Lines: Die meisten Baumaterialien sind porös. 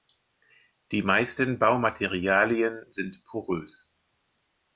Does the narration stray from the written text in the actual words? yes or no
no